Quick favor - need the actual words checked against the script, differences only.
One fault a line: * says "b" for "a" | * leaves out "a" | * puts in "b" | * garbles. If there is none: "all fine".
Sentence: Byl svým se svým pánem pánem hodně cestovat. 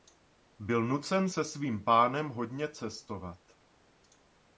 * says "nucen" for "svým"
* leaves out "pánem"